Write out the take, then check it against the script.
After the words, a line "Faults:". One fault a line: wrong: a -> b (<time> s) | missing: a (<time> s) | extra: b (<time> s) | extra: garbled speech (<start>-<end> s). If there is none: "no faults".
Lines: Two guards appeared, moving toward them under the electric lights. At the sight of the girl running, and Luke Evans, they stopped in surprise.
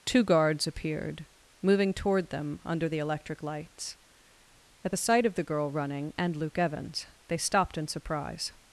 Two guards appeared, moving toward them under the electric lights. At the sight of the girl running, and Luke Evans, they stopped in surprise.
Faults:
no faults